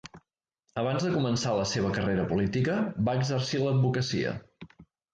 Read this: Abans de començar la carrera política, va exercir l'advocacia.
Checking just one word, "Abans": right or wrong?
right